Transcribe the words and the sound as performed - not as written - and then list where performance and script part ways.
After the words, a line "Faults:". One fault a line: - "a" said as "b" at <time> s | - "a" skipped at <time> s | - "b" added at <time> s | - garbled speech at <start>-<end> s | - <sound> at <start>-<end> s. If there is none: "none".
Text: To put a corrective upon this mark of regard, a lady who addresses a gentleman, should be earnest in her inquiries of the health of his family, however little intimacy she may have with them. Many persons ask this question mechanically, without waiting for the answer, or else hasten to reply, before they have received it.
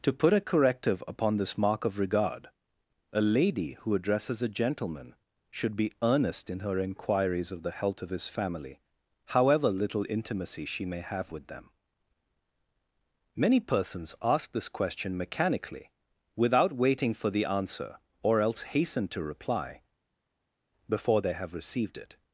To put a corrective upon this mark of regard, a lady who addresses a gentleman, should be earnest in her inquiries of the health of his family, however little intimacy she may have with them. Many persons ask this question mechanically, without waiting for the answer, or else hasten to reply, before they have received it.
Faults:
none